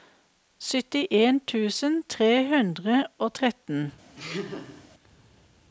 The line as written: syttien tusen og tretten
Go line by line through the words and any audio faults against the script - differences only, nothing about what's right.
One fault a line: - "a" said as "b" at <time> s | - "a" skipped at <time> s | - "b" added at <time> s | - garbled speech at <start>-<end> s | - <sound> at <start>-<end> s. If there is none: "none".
- "tre hundre" added at 2.1 s
- laugh at 4.2-4.9 s